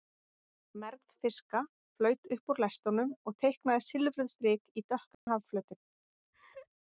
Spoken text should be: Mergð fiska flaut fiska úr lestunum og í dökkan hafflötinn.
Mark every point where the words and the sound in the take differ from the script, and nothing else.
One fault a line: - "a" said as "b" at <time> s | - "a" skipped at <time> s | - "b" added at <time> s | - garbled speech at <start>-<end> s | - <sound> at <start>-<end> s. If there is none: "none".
- "fiska" said as "upp" at 2.4 s
- "teiknaði silfruð strik" added at 3.5 s
- dropout at 5.1-5.3 s
- laugh at 6.3-6.7 s